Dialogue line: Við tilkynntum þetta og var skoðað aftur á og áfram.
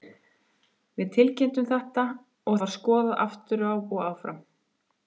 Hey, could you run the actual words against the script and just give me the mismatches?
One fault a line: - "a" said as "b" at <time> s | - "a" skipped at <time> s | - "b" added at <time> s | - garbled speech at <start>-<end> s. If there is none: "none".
none